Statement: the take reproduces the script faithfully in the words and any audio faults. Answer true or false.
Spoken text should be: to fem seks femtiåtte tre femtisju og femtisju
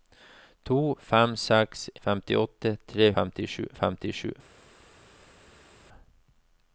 true